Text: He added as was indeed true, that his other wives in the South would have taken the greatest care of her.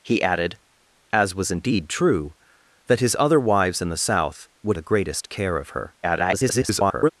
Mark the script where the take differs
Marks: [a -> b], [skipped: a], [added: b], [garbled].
He added as was indeed true, that his other wives in the South would [skipped: have taken] the greatest care of her. [garbled]